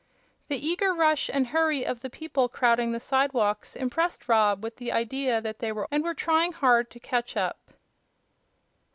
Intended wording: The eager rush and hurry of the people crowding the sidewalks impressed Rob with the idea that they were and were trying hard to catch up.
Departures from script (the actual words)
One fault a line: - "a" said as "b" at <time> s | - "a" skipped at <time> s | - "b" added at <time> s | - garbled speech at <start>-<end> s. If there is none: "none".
none